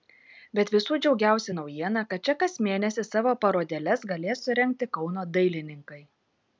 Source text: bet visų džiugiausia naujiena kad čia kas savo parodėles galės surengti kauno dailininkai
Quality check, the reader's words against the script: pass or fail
fail